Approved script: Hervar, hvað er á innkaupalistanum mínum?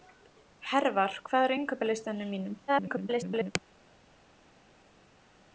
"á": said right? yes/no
yes